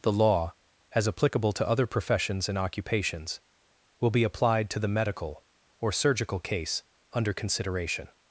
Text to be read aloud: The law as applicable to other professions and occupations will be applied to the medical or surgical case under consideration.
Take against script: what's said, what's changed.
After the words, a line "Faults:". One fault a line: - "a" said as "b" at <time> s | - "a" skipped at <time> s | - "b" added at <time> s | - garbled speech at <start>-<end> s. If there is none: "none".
The law as applicable to other professions and occupations will be applied to the medical or surgical case under consideration.
Faults:
none